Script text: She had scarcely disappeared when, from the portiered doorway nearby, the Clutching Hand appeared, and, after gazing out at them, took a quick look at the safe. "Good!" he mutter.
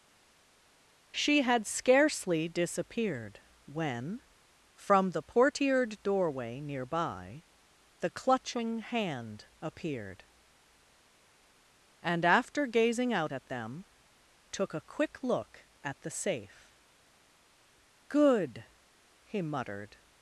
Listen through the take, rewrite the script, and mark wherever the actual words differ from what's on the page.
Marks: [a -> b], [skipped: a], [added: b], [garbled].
She had scarcely disappeared when, from the portiered doorway nearby, the Clutching Hand appeared, and, after gazing out at them, took a quick look at the safe. "Good!" he [mutter. -> muttered]